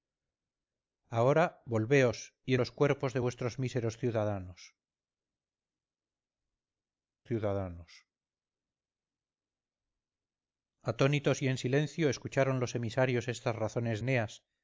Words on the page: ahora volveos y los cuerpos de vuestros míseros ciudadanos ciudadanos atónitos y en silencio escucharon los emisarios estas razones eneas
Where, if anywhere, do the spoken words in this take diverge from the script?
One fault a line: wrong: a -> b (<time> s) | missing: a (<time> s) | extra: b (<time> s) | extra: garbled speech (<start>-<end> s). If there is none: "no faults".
no faults